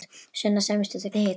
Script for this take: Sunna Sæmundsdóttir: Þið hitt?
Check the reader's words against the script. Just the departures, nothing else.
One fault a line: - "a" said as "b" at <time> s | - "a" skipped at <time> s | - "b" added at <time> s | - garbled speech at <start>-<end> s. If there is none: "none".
none